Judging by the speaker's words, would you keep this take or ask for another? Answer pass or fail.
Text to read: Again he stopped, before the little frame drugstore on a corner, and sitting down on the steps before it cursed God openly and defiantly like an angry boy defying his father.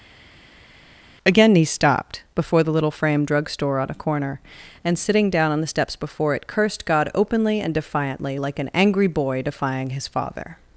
pass